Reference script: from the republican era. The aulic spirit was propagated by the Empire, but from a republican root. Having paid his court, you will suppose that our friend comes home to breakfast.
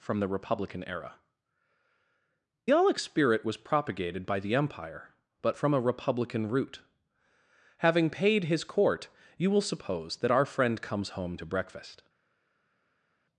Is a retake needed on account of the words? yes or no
yes